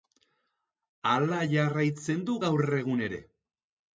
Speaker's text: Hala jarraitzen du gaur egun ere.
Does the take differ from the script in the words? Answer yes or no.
no